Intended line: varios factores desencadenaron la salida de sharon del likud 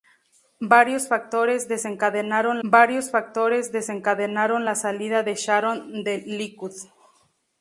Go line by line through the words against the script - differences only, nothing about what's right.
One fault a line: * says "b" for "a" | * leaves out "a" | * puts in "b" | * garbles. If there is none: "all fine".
* puts in "varios factores desencadenaron"